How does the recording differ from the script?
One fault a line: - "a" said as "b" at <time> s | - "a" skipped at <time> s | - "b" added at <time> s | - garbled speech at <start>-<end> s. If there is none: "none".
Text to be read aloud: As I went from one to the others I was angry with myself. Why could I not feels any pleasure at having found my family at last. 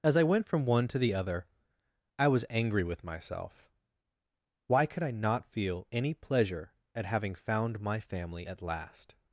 - "others" said as "other" at 1.1 s
- "feels" said as "feel" at 5.5 s